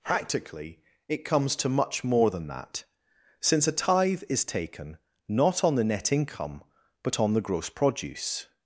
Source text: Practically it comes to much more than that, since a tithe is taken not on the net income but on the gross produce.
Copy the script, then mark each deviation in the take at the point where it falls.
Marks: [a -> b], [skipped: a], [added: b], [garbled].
Practically it comes to much more than that, since a tithe is taken not on the net income but on the gross produce.